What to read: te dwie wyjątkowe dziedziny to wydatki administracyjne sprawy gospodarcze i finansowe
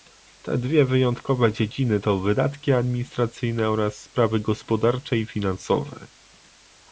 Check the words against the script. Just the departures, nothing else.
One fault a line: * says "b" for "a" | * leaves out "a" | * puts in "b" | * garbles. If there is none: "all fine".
* puts in "oraz"